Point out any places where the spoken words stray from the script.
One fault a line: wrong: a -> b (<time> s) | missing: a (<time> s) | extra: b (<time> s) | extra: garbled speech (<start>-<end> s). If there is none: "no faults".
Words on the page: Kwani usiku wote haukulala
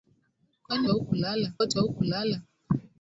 wrong: usiku -> haukulala (0.9 s)